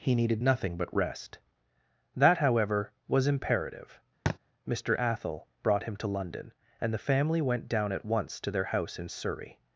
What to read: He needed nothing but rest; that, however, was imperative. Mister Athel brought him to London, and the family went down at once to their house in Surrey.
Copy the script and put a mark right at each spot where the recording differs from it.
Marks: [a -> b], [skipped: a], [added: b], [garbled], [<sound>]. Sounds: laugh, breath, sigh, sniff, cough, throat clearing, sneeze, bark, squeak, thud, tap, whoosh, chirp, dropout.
He needed nothing but rest; that, however, was imperative. [thud] Mister Athel brought him to London, and the family went down at once to their house in Surrey.